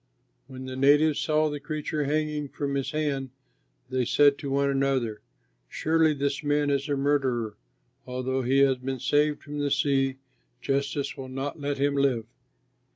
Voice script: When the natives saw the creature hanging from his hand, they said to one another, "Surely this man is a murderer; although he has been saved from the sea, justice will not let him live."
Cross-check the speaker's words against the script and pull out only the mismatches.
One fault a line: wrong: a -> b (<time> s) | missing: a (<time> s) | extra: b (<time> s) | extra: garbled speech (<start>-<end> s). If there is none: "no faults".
no faults